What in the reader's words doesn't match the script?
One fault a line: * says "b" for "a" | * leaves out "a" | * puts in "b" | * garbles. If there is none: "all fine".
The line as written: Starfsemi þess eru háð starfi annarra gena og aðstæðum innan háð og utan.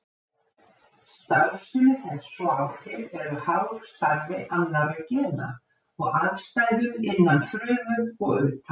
* puts in "og áhrif"
* says "frumu" for "háð"